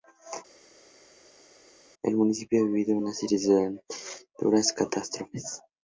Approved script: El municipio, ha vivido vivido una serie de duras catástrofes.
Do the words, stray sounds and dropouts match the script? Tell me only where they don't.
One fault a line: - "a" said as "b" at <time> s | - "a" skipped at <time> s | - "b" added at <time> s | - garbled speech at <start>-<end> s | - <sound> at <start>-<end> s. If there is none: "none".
- "vivido" skipped at 3.0 s